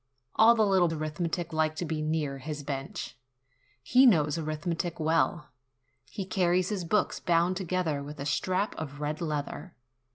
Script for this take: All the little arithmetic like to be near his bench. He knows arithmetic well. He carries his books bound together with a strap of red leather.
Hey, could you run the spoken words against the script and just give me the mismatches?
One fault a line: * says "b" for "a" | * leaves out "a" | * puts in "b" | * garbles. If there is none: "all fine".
all fine